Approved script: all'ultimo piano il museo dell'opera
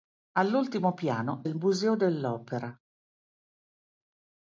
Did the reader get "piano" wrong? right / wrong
right